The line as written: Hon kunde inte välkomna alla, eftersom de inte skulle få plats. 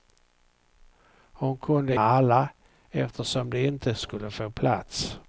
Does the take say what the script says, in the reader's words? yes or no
no